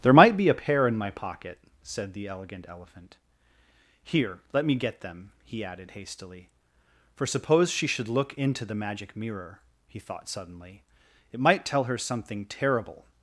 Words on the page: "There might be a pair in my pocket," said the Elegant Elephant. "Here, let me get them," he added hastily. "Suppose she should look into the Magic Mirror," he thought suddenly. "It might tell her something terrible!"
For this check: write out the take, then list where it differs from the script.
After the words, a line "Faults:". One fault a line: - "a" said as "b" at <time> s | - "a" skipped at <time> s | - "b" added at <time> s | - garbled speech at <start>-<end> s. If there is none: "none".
"There might be a pair in my pocket," said the Elegant Elephant. "Here, let me get them," he added hastily. "For suppose she should look into the Magic Mirror," he thought suddenly. "It might tell her something terrible!"
Faults:
- "For" added at 7.1 s